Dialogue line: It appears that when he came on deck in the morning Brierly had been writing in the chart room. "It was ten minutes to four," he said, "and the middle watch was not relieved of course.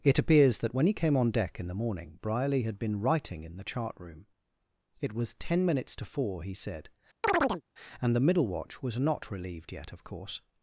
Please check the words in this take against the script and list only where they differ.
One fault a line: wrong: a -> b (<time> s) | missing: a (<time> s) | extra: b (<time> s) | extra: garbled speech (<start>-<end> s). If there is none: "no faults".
extra: yet (9.7 s)